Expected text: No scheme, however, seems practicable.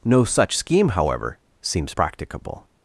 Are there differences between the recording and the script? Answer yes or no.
yes